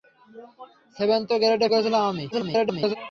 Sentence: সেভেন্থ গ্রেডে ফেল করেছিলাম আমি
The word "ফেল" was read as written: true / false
false